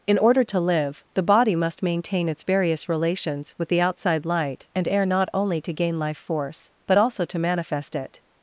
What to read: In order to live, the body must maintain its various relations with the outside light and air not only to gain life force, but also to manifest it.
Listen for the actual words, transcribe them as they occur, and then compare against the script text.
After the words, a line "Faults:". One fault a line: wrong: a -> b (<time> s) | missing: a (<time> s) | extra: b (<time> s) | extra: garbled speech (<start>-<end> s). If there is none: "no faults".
In order to live, the body must maintain its various relations with the outside light and air not only to gain life force, but also to manifest it.
Faults:
no faults